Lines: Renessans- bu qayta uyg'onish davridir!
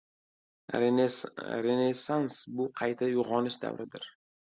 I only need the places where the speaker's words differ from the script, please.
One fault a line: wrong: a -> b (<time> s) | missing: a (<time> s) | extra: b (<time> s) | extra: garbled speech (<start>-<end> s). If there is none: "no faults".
no faults